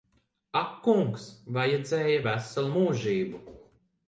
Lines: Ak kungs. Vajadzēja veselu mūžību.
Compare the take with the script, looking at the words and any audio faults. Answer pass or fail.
pass